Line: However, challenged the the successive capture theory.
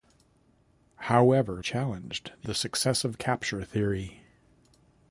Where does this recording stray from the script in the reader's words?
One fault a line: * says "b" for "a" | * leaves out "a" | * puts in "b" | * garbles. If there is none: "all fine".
all fine